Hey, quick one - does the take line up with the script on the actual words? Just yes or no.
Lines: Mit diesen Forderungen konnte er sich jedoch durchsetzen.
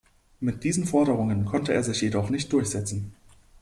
no